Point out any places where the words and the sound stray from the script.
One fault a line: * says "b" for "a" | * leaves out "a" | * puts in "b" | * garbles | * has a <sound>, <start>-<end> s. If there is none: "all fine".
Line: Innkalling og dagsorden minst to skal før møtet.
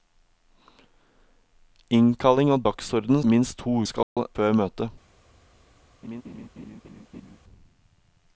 * has a dropout, 4.0-4.2 s
* has a laugh, 6.0-7.4 s